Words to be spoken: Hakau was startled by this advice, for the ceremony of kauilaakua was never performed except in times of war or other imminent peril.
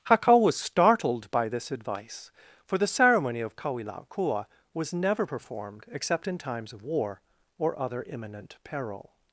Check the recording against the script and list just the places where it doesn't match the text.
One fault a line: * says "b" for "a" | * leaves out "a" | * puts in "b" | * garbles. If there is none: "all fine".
all fine